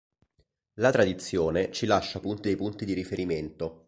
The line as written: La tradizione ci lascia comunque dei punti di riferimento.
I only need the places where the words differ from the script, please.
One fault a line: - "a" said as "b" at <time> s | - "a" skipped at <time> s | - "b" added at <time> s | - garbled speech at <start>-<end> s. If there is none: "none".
- "comunque" said as "punti" at 2.2 s